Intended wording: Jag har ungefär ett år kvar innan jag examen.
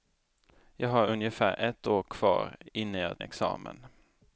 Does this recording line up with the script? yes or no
yes